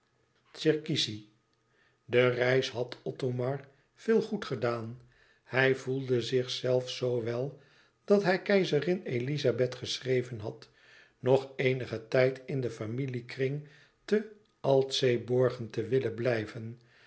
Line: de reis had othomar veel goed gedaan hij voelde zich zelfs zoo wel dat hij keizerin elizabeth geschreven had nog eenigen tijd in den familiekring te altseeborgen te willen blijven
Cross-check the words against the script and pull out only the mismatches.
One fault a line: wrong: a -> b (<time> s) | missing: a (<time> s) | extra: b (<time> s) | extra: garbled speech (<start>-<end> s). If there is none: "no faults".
no faults